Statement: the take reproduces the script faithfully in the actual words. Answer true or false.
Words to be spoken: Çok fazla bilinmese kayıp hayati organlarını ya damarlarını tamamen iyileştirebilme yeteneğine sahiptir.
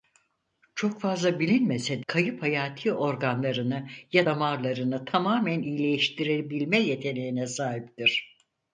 true